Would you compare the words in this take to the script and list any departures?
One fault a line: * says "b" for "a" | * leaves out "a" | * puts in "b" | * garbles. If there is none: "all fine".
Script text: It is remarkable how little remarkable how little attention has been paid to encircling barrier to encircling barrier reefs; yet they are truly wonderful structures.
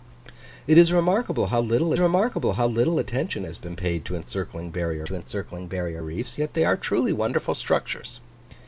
all fine